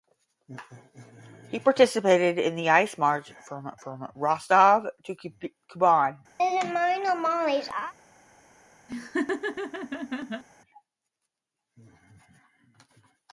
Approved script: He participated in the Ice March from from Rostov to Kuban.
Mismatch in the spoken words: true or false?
false